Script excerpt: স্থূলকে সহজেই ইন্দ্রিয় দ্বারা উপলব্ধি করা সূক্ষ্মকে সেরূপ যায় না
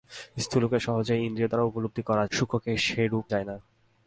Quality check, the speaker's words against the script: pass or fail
pass